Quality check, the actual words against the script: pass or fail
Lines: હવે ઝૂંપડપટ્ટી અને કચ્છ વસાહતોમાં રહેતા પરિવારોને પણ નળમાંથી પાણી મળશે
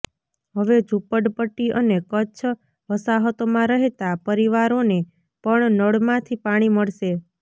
pass